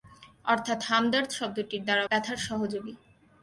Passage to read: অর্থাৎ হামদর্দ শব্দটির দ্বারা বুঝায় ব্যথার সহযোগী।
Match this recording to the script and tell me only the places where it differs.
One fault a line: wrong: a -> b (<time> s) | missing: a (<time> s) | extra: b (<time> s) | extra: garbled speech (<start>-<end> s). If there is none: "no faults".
missing: বুঝায় (2.0 s)